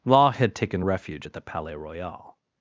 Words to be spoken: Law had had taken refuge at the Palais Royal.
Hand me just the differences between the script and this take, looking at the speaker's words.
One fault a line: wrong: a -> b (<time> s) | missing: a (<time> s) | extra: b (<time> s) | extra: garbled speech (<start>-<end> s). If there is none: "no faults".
missing: had (0.6 s)